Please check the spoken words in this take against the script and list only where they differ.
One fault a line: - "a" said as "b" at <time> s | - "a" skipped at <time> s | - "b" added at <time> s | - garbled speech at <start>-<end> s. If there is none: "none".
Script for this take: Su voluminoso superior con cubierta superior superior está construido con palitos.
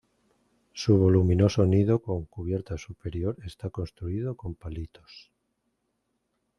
- "superior" said as "nido" at 1.7 s
- "superior" skipped at 3.4 s